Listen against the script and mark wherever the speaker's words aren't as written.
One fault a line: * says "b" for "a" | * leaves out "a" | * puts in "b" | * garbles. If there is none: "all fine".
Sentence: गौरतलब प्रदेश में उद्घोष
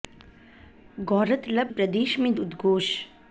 all fine